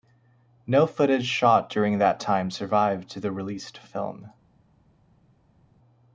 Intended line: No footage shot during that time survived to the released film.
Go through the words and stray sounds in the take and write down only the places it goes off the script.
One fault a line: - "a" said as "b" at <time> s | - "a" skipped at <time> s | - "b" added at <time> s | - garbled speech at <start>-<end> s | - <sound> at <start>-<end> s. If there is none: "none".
none